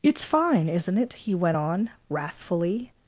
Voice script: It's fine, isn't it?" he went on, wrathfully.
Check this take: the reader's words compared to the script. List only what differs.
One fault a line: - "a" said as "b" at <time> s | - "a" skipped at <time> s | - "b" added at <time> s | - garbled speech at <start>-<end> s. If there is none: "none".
none